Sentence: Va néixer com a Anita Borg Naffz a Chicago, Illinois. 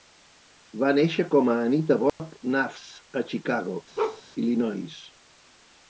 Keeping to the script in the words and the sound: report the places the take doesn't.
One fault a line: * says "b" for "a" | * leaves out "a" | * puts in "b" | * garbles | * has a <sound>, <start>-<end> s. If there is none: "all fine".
* has a dropout, 2.1-2.2 s
* has a bark, 4.0-4.2 s